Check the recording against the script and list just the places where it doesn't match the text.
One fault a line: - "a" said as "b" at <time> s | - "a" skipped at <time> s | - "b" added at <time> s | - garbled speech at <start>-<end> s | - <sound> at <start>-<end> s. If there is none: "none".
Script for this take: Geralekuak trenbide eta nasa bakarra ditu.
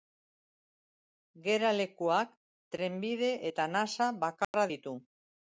- dropout at 4.4-4.5 s